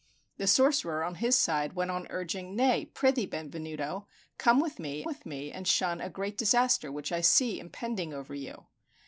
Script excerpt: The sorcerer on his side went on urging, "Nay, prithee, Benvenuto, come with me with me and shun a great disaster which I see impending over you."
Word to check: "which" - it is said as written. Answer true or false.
true